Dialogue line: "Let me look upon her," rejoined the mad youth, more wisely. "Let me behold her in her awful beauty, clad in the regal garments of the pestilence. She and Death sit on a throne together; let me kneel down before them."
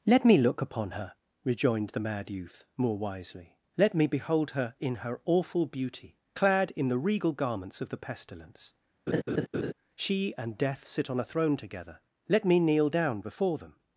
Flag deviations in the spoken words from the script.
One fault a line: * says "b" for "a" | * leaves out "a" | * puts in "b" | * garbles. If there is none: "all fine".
all fine